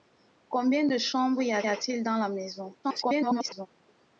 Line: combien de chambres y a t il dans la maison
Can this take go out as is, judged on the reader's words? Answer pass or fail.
fail